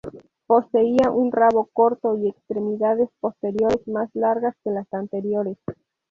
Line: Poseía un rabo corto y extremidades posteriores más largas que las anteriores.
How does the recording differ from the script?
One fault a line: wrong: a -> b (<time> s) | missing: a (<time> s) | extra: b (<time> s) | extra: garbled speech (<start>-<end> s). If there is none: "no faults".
no faults